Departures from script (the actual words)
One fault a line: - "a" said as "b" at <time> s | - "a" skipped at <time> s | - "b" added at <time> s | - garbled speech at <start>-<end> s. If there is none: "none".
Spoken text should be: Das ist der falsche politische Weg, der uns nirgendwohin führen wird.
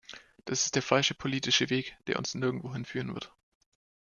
none